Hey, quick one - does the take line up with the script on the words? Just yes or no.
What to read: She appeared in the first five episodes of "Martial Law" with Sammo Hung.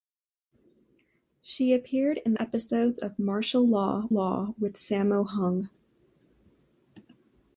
no